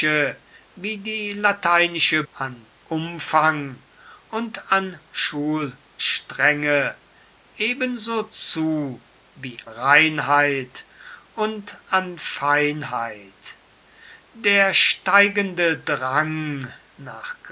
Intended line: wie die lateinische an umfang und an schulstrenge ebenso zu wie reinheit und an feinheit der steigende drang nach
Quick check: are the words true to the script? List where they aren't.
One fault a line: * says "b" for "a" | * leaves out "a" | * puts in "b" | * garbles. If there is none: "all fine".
all fine